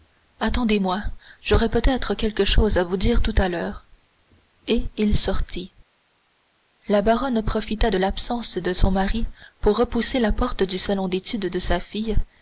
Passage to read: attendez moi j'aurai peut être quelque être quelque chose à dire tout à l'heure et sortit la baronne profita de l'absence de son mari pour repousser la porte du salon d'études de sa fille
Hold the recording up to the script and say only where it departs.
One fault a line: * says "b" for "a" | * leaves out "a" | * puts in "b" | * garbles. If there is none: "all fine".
* leaves out "être quelque"
* puts in "vous"
* puts in "il"